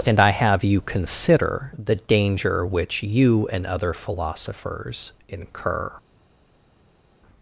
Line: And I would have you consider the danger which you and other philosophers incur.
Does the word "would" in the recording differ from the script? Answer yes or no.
yes